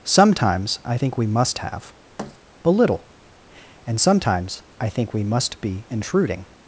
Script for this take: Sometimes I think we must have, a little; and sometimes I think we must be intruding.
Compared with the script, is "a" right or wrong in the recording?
wrong